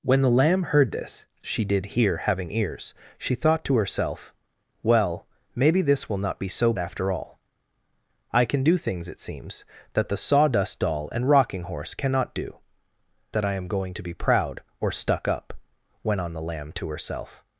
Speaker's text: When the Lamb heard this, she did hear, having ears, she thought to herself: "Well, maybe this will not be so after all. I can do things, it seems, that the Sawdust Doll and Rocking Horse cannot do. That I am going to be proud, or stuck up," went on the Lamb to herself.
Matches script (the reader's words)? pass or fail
pass